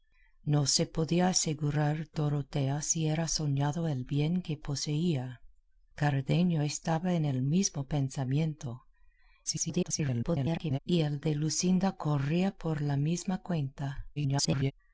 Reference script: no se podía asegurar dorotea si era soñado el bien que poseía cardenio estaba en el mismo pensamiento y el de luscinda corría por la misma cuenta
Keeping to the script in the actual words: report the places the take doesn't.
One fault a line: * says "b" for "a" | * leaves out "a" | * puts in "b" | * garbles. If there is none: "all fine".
* garbles
* garbles